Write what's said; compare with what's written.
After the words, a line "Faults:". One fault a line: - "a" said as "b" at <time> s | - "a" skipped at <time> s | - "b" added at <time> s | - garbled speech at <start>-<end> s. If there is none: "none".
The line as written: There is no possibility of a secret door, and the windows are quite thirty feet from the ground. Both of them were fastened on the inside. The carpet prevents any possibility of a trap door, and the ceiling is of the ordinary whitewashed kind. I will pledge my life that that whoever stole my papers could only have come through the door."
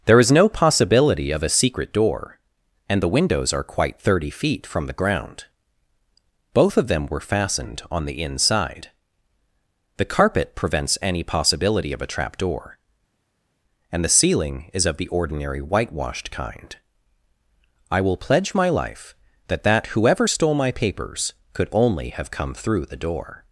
There is no possibility of a secret door, and the windows are quite thirty feet from the ground. Both of them were fastened on the inside. The carpet prevents any possibility of a trap door, and the ceiling is of the ordinary whitewashed kind. I will pledge my life that that whoever stole my papers could only have come through the door."
Faults:
none